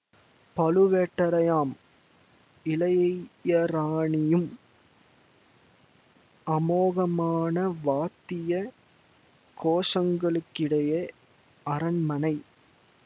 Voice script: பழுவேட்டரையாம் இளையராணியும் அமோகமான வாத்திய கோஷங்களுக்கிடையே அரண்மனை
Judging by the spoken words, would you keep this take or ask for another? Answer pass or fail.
pass